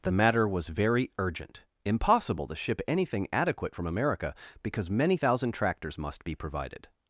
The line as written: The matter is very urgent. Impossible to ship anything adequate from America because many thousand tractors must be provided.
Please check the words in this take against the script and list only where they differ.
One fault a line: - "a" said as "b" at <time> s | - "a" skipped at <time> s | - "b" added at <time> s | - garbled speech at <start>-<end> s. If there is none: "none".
- "is" said as "was" at 0.5 s